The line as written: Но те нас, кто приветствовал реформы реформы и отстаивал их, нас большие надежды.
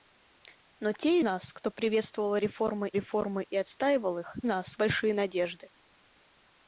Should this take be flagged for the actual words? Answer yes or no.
no